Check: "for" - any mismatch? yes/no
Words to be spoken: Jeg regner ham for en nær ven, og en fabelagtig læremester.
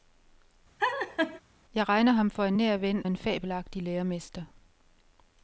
no